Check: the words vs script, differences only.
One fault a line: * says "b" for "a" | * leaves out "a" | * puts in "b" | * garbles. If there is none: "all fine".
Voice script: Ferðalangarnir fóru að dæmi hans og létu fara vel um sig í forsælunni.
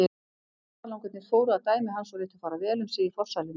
all fine